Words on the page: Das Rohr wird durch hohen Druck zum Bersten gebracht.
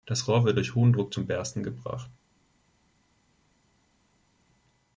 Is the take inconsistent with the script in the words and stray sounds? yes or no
no